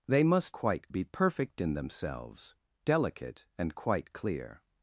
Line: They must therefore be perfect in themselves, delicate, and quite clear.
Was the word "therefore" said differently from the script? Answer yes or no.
yes